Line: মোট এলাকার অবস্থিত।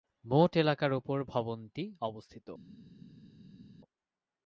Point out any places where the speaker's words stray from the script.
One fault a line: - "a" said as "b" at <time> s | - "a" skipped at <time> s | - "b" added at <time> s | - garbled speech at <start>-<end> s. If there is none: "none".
- "উপর ভবনটি" added at 0.9 s